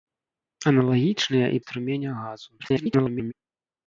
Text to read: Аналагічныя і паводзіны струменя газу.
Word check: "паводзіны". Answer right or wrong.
wrong